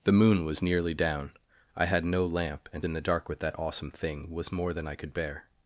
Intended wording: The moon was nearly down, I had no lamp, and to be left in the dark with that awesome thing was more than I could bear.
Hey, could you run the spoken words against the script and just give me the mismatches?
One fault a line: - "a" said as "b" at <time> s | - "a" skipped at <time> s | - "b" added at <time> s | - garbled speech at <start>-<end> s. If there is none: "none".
- "to be left" skipped at 2.8 s